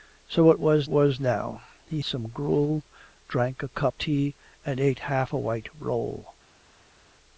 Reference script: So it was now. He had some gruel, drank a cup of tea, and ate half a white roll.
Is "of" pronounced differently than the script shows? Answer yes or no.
yes